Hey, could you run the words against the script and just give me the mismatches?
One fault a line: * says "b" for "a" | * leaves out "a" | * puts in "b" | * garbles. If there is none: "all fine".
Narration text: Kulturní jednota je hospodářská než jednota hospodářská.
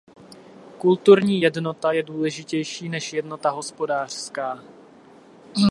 * says "důležitější" for "hospodářská"